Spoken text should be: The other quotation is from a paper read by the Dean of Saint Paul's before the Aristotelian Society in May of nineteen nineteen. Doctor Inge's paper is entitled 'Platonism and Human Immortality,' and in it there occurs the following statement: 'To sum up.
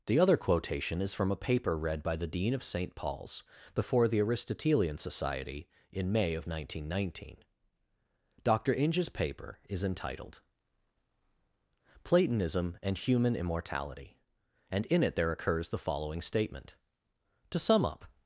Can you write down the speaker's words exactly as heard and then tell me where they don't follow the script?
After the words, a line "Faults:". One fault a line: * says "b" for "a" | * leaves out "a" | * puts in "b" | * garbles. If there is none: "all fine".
The other quotation is from a paper read by the Dean of Saint Paul's before the Aristotelian Society in May of nineteen nineteen. Doctor Inge's paper is entitled 'Platonism and Human Immortality,' and in it there occurs the following statement: 'To sum up.
Faults:
all fine